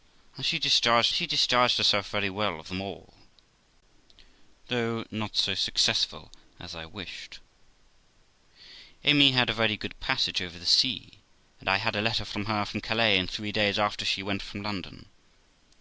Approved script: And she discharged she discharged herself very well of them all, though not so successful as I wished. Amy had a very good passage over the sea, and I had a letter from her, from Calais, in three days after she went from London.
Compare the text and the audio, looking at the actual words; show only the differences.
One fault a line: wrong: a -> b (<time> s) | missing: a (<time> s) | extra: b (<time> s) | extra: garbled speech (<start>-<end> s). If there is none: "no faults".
no faults